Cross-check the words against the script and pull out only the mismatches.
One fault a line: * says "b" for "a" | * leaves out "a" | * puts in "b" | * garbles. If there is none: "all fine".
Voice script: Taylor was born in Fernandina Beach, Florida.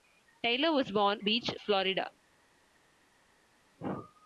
* leaves out "in Fernandina"